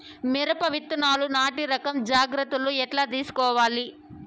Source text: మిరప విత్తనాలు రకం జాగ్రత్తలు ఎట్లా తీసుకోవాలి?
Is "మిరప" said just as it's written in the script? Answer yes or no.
yes